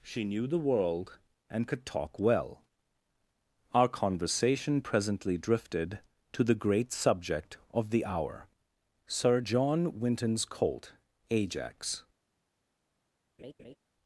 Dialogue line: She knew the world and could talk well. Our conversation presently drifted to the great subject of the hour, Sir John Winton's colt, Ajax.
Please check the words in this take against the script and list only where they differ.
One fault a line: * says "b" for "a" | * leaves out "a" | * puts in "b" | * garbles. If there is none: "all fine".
all fine